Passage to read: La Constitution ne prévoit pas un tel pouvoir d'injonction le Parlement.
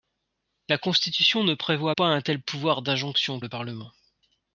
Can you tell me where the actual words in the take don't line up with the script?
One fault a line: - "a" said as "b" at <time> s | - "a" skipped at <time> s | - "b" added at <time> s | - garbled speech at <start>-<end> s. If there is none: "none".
none